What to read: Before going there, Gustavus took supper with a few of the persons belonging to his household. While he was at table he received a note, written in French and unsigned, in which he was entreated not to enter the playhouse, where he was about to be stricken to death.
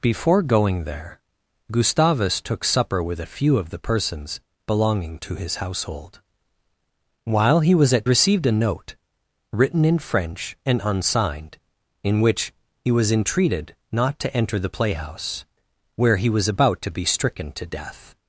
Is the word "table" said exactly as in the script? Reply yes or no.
no